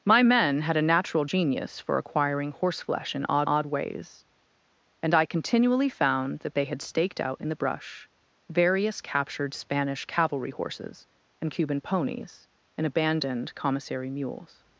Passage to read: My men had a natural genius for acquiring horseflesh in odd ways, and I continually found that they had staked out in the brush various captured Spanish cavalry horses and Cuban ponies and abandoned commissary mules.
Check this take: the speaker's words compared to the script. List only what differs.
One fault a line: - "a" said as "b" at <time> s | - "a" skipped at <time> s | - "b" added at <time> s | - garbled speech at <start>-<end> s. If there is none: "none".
- "odd" added at 3.5 s